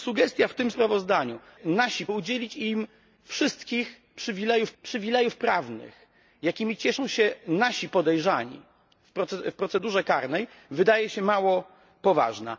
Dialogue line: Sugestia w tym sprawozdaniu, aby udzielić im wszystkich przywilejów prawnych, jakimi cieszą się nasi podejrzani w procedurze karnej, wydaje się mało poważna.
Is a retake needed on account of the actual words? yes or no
yes